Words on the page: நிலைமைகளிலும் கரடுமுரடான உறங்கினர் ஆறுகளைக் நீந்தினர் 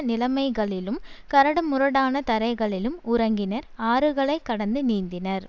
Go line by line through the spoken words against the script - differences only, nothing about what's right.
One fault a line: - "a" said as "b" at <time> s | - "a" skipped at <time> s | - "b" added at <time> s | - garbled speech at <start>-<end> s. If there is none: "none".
- "தரைகளிலும்" added at 2.3 s
- "கடந்து" added at 4.5 s